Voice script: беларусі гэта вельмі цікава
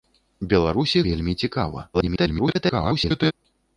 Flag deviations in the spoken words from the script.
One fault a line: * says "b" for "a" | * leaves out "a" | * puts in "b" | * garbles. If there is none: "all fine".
* leaves out "гэта"
* garbles